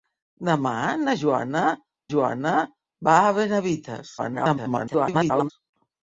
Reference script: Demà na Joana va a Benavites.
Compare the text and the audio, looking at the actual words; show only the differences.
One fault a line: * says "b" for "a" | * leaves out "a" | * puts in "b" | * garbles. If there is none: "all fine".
* puts in "Joana"
* garbles